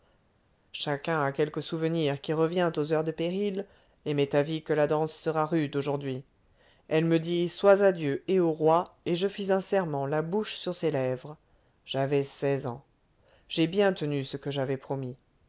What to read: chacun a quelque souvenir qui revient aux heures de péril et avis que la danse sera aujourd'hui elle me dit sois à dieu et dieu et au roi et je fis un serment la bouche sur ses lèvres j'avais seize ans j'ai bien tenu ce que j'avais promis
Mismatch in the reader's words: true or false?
true